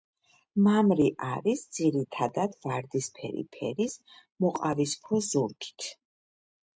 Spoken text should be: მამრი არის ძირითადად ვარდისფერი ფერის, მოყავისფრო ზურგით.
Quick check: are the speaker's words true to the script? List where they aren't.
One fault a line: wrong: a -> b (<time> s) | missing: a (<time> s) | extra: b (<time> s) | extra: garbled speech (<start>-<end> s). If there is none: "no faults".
no faults